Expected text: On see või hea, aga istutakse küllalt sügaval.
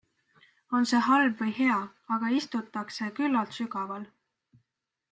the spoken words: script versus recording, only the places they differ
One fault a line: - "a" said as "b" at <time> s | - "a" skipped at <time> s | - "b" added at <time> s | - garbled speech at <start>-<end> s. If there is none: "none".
- "halb" added at 1.1 s